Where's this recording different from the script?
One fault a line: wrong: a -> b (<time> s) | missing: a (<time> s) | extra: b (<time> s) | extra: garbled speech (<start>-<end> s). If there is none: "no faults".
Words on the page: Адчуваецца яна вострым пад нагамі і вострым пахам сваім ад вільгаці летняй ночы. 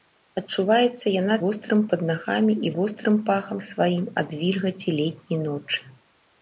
no faults